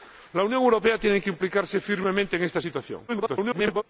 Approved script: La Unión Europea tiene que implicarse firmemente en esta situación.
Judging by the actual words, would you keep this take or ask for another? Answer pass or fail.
fail